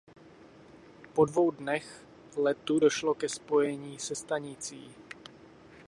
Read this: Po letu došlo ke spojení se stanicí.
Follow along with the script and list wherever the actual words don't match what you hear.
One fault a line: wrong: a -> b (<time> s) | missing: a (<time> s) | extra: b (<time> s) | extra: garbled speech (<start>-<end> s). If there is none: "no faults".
extra: dvou dnech (1.2 s)